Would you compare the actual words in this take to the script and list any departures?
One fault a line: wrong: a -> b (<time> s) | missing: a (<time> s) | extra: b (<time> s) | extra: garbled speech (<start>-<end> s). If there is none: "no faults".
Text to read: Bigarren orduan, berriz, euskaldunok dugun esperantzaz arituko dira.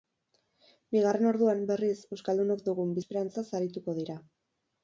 no faults